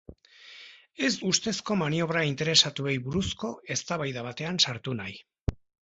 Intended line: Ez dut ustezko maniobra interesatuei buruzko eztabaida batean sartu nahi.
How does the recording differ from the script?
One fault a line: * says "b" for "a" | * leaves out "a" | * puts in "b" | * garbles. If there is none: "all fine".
* leaves out "dut"